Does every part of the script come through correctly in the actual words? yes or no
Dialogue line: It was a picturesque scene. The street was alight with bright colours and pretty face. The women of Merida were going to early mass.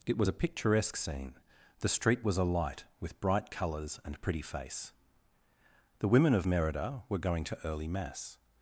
yes